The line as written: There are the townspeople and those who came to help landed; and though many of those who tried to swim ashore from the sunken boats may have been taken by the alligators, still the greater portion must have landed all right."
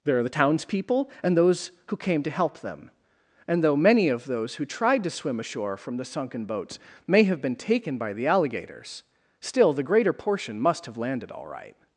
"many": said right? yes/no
yes